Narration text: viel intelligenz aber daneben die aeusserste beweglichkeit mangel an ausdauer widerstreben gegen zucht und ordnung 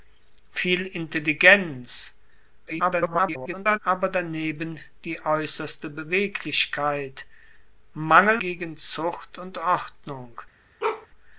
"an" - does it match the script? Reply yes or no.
no